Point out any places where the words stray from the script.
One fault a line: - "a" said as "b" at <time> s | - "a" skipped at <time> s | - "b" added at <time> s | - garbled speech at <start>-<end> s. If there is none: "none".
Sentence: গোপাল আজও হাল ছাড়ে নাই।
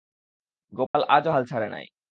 none